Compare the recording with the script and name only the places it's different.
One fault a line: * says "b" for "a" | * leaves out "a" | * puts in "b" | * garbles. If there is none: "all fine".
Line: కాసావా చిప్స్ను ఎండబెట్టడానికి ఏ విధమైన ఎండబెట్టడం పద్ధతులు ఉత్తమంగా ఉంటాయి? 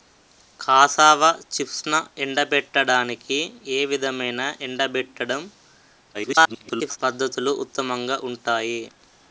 * garbles